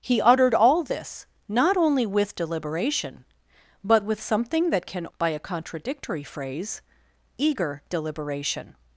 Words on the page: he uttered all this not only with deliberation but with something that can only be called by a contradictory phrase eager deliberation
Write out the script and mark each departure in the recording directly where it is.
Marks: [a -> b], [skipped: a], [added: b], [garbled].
he uttered all this not only with deliberation but with something that can [skipped: only be called] by a contradictory phrase eager deliberation